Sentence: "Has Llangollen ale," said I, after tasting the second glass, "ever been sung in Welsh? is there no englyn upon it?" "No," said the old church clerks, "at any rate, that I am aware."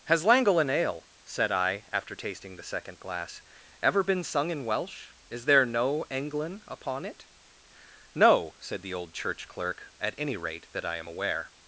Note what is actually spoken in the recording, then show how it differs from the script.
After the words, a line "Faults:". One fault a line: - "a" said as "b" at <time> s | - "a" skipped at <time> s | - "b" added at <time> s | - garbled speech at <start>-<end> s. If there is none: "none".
"Has Llangollen ale," said I, after tasting the second glass, "ever been sung in Welsh? is there no englyn upon it?" "No," said the old church clerk, "at any rate, that I am aware."
Faults:
- "clerks" said as "clerk" at 9.5 s